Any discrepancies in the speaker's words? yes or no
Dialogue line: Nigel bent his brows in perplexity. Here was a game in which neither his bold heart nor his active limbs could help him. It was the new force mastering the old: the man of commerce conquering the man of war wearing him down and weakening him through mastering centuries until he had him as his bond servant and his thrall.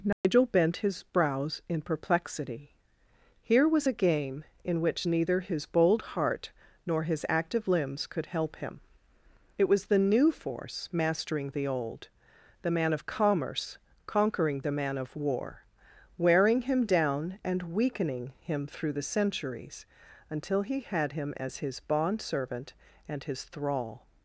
yes